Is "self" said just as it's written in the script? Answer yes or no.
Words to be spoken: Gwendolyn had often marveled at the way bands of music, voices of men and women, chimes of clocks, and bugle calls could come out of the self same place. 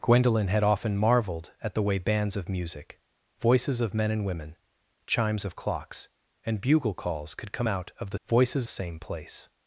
no